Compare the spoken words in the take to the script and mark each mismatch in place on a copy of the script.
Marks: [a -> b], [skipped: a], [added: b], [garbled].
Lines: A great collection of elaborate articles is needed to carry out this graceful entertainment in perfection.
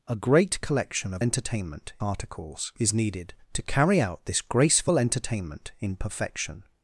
A great collection of [elaborate -> entertainment] articles is needed to carry out this graceful entertainment in perfection.